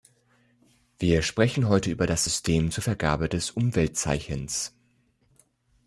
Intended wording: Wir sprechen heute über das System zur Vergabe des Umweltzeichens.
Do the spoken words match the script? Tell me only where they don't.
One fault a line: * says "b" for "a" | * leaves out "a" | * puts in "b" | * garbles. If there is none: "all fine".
all fine